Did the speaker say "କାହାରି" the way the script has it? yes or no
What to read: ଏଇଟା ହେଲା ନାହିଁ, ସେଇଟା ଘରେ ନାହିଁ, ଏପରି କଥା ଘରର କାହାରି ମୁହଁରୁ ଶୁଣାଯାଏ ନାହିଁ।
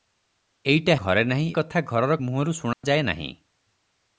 no